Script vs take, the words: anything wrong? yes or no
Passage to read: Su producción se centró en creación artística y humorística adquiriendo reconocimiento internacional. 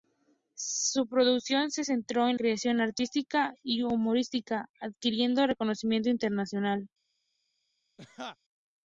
no